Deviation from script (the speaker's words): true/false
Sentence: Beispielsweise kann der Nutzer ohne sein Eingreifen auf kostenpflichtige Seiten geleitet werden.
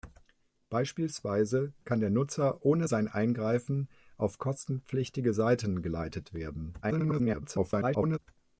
true